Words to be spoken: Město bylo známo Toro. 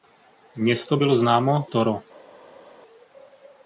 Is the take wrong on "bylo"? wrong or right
right